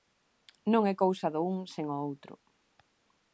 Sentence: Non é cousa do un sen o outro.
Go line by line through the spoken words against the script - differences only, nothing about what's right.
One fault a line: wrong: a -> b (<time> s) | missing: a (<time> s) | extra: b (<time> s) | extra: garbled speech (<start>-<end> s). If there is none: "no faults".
no faults